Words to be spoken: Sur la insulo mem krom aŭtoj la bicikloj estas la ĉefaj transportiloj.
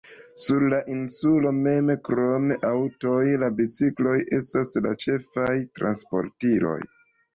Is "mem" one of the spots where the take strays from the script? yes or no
no